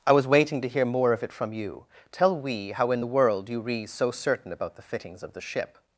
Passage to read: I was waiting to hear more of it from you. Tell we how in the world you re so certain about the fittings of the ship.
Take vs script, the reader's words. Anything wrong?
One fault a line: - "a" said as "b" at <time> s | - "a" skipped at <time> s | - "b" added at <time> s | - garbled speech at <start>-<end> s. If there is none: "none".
none